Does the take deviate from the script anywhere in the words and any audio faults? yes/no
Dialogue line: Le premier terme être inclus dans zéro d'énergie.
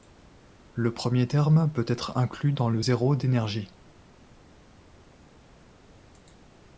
yes